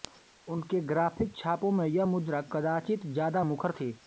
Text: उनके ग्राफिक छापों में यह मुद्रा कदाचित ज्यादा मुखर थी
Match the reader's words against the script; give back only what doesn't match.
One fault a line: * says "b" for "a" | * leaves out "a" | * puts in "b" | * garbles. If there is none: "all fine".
all fine